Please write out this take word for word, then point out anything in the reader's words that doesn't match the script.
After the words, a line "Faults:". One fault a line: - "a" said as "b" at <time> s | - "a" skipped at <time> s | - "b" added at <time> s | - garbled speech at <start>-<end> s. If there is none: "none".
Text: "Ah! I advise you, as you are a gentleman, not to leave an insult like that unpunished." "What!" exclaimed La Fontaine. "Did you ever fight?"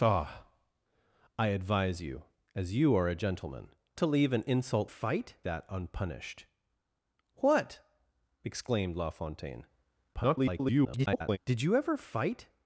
"Ah! I advise you, as you are a gentleman, to leave an insult fight that unpunished." "What!" exclaimed La Fontaine. [garbled] "Did you ever fight?"
Faults:
- "not" skipped at 3.8 s
- "like" said as "fight" at 4.8 s
- garbled speech at 10.1-11.4 s